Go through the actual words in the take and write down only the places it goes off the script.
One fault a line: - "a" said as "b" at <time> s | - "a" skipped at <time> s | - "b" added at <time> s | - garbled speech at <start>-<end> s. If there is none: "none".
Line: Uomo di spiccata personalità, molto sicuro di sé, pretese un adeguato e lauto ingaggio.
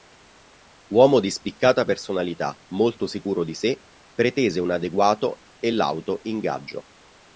none